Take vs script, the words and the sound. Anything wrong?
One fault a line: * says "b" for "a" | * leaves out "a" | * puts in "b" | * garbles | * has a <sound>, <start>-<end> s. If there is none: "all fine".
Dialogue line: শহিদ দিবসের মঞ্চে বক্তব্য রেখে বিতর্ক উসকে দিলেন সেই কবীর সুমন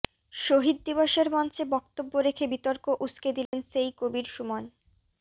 * has a dropout, 3.5-3.5 s